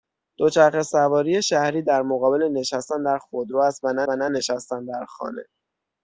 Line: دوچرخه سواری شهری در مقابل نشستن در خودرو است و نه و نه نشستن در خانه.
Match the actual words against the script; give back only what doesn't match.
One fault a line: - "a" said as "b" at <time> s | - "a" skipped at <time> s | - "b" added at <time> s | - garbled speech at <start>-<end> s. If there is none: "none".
none